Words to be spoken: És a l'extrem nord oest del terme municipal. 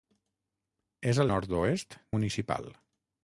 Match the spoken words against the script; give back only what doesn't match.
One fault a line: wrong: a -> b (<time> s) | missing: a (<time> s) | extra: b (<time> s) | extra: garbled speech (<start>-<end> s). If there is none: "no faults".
missing: l'extrem (1.3 s)
missing: del terme (2.0 s)